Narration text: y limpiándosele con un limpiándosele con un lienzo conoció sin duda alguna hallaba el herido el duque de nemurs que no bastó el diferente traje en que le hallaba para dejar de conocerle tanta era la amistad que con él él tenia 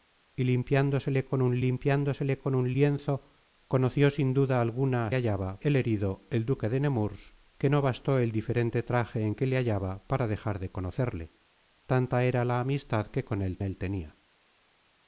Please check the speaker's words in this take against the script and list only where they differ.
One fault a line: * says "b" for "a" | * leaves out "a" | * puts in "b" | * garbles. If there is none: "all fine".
all fine